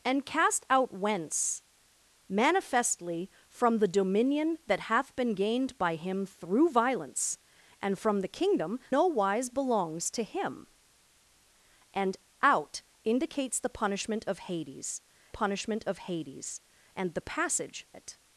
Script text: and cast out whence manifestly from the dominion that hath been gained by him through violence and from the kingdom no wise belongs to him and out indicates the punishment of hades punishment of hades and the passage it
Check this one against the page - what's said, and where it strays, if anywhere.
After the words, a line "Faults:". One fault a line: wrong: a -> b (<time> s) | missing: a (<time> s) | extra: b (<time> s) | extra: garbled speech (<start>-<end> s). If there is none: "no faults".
and cast out whence manifestly from the dominion that hath been gained by him through violence and from the kingdom no wise belongs to him and out indicates the punishment of hades punishment of hades and the passage it
Faults:
no faults